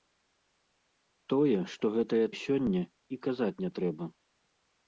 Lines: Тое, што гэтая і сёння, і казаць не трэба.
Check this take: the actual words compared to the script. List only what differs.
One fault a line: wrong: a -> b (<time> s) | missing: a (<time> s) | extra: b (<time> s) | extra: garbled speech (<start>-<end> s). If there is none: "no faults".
no faults